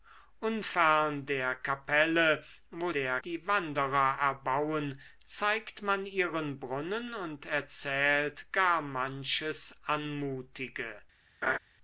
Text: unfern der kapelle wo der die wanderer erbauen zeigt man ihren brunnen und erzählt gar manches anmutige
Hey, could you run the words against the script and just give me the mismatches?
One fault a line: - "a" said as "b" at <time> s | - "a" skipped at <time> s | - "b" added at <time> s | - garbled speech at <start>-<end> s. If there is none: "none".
none